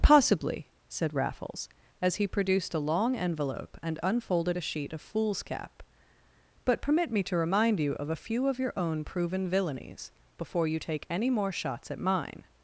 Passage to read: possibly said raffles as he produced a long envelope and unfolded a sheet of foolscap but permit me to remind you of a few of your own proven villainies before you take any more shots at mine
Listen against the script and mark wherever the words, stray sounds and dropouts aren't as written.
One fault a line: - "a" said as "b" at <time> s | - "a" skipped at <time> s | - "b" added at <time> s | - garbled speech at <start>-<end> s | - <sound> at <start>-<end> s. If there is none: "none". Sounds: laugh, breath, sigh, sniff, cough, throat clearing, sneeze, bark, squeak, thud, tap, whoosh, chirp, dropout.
none